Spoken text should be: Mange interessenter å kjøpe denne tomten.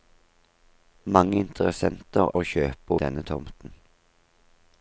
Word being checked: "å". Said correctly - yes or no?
yes